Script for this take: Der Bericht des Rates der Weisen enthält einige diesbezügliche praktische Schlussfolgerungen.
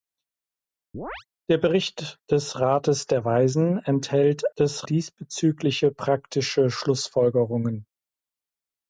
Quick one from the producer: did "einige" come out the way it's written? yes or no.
no